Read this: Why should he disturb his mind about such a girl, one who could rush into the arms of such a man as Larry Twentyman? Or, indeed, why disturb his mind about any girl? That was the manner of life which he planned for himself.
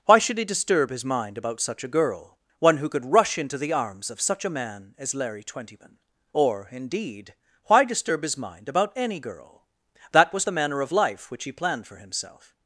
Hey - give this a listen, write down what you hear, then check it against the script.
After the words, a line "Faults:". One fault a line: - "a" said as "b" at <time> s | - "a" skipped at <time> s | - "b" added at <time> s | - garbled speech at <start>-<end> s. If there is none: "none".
Why should he disturb his mind about such a girl, one who could rush into the arms of such a man as Larry Twentyman? Or, indeed, why disturb his mind about any girl? That was the manner of life which he planned for himself.
Faults:
none